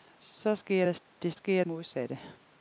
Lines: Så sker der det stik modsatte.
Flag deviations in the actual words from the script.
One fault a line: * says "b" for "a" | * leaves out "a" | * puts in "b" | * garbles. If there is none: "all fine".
* says "sker" for "stik"